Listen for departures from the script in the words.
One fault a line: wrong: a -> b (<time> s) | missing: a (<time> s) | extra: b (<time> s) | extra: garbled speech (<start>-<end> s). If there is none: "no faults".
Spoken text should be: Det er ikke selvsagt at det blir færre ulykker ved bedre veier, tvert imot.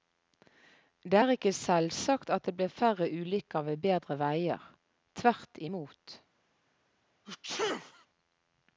no faults